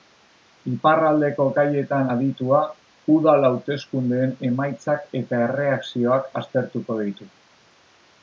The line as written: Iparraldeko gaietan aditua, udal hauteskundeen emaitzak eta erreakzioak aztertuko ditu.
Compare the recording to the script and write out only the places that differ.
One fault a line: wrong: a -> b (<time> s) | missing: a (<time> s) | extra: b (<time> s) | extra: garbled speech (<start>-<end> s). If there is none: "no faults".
no faults